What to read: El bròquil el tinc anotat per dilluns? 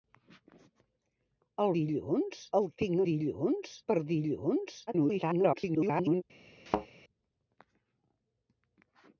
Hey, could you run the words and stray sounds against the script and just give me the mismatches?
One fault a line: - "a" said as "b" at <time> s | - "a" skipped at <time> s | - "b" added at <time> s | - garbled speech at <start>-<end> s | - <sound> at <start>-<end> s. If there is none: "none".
- "bròquil" said as "dilluns" at 1.8 s
- "anotat" said as "dilluns" at 3.1 s
- garbled speech at 4.9-6.2 s
- thud at 6.7-6.9 s